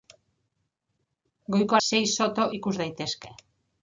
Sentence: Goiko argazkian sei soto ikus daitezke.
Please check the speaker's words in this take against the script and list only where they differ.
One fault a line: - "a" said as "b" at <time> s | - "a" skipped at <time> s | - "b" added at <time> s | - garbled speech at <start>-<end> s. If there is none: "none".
- "argazkian" skipped at 1.8 s